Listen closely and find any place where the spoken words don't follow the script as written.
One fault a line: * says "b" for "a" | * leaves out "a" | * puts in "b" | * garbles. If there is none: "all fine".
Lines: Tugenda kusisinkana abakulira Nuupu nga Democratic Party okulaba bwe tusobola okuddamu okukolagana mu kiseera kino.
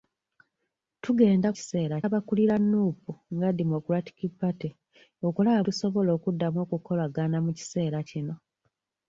* says "kiseera" for "kusisinkana"
* leaves out "bwe"